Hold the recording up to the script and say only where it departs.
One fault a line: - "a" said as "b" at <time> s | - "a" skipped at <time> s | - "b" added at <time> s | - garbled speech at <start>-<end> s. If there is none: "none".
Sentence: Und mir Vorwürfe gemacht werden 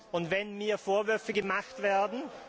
- "wenn" added at 0.3 s